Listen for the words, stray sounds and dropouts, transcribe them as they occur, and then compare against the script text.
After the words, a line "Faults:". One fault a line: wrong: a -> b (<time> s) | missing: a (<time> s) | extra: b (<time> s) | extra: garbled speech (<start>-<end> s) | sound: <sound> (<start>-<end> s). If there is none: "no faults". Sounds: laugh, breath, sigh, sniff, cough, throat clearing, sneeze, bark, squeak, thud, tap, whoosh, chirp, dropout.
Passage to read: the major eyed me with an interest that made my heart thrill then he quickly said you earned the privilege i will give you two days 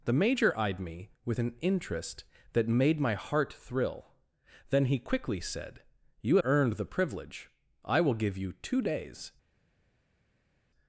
the major eyed me with an interest that made my heart thrill then he quickly said you earned the privilege i will give you two days
Faults:
no faults